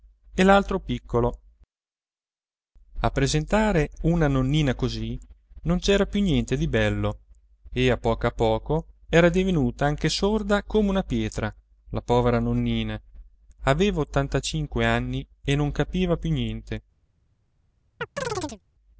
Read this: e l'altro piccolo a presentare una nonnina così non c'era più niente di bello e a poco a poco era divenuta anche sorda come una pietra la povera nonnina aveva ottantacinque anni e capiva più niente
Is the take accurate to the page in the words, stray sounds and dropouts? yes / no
no